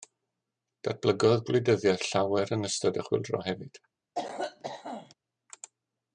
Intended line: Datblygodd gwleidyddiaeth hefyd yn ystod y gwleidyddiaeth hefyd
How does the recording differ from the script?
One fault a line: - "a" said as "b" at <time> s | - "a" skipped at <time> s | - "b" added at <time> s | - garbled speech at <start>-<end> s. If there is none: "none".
- "hefyd" said as "llawer" at 2.1 s
- "gwleidyddiaeth" said as "chwyldro" at 3.1 s